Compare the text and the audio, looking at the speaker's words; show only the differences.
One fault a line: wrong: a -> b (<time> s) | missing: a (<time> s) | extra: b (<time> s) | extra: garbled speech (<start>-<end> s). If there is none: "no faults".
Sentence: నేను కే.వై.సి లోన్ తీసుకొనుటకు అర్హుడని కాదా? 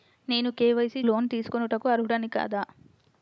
no faults